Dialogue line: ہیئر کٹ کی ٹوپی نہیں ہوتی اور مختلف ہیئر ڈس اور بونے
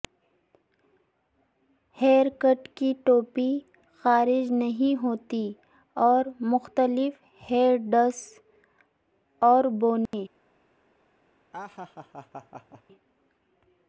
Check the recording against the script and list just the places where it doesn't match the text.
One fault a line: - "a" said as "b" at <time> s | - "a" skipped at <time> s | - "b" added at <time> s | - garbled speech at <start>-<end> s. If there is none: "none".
- "خارج" added at 4.0 s